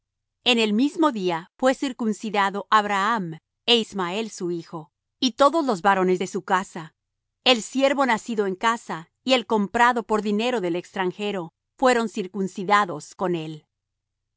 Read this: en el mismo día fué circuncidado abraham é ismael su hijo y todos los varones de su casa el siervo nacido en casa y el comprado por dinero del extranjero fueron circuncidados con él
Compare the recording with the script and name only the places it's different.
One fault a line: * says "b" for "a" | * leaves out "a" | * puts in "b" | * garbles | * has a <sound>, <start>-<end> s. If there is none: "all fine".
all fine